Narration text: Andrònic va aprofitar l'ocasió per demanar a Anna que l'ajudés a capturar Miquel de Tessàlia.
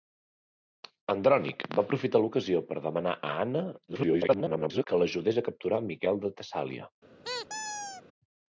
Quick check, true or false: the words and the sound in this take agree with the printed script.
false